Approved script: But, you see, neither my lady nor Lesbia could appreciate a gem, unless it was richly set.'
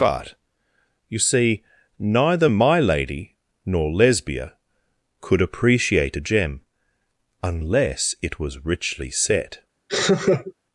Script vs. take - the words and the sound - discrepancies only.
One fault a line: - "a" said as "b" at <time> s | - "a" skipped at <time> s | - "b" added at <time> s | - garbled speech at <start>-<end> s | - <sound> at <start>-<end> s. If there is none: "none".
- laugh at 9.9-10.5 s